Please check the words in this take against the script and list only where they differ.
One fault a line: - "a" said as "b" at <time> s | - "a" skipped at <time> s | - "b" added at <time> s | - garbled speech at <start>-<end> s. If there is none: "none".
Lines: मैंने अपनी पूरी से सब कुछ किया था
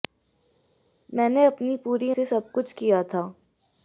none